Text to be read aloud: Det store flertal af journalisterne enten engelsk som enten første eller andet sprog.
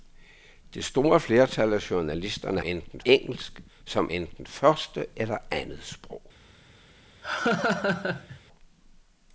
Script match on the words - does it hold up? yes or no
yes